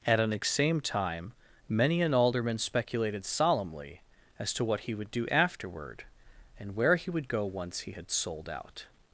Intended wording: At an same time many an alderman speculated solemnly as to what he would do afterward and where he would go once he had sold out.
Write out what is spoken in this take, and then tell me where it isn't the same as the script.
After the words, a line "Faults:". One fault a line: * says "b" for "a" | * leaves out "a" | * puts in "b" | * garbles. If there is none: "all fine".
At an same time many an alderman speculated solemnly as to what he would do afterward and where he would go once he had sold out.
Faults:
all fine